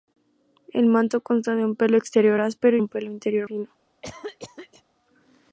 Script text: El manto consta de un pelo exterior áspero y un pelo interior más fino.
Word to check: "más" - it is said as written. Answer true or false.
false